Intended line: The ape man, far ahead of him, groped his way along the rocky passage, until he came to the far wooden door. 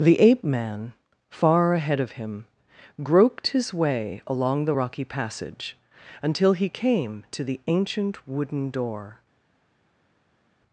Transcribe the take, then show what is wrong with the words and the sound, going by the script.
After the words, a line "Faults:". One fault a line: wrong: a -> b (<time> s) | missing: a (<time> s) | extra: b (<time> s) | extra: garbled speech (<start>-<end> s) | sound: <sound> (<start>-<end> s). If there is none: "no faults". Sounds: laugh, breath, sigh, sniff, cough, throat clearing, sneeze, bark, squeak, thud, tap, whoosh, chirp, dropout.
The ape man, far ahead of him, groped his way along the rocky passage, until he came to the ancient wooden door.
Faults:
wrong: far -> ancient (7.7 s)